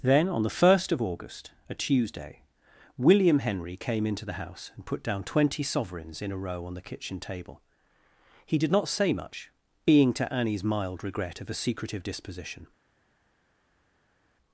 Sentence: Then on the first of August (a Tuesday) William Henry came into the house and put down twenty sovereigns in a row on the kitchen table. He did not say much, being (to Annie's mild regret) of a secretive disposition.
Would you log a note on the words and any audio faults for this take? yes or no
no